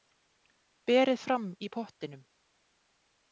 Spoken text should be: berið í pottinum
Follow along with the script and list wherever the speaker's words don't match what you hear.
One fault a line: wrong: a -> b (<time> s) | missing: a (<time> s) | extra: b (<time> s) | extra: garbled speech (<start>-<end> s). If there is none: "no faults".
extra: fram (1.2 s)